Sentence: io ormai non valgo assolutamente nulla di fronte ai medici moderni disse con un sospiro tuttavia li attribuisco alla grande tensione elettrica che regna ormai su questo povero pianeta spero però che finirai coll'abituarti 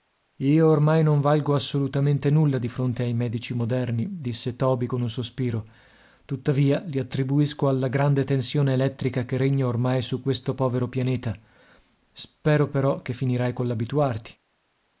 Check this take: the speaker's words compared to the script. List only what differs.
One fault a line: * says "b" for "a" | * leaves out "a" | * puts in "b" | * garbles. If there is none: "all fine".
* puts in "toby"